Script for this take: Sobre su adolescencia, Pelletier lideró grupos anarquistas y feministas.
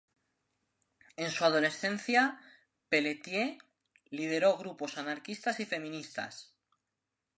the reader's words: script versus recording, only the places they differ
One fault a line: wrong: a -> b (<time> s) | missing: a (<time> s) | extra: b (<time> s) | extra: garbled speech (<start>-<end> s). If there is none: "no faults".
wrong: Sobre -> En (1.1 s)